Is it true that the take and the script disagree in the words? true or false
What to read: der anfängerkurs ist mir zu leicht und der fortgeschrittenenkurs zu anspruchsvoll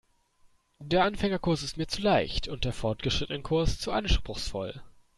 false